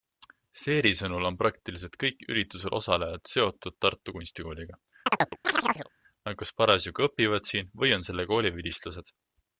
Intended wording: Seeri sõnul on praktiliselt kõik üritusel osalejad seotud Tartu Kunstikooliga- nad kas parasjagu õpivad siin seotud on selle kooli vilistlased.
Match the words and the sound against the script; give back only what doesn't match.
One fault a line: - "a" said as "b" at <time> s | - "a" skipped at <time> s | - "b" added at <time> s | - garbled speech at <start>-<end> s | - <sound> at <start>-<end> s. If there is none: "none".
- chirp at 5.1-5.9 s
- "seotud" said as "või" at 7.8 s